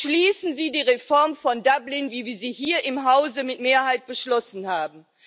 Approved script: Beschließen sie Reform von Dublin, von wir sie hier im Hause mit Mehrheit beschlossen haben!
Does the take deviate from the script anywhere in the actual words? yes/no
yes